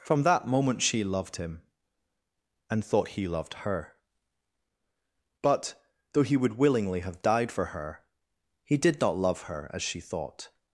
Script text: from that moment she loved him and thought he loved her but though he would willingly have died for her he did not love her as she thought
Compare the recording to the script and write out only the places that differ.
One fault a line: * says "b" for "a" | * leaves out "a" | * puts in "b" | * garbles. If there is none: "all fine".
all fine